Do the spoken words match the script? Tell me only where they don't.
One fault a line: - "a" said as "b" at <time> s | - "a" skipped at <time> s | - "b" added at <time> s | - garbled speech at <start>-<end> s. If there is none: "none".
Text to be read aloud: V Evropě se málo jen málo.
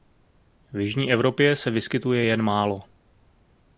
- "jižní" added at 0.8 s
- "málo" said as "vyskytuje" at 1.7 s